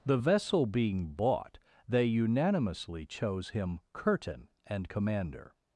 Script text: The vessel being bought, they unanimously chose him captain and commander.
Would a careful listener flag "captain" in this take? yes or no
yes